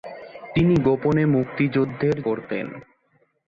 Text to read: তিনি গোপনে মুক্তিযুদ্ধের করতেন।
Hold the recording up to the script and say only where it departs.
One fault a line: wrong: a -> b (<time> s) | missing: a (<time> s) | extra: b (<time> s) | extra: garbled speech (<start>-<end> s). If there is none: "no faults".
no faults